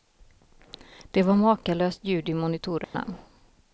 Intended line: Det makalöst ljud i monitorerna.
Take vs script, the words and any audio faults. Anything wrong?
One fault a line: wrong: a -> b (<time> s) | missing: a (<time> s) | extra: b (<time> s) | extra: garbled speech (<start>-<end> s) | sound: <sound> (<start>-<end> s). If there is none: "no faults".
extra: var (1.2 s)
sound: dropout (2.8-2.9 s)